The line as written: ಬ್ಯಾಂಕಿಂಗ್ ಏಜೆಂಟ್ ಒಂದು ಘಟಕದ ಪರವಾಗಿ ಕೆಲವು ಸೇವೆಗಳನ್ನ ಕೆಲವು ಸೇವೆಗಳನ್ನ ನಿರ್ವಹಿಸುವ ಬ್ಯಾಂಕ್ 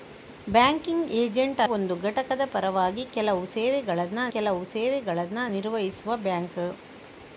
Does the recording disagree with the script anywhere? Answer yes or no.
no